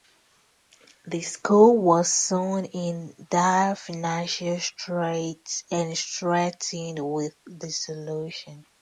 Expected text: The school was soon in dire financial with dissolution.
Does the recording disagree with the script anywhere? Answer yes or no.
yes